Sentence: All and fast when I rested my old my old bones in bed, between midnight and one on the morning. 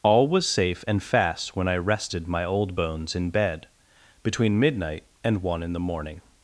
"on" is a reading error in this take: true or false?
true